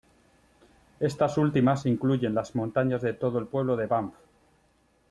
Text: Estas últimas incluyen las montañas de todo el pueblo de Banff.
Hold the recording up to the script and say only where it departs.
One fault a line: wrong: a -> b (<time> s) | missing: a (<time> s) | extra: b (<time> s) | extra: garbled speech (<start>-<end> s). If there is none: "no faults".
no faults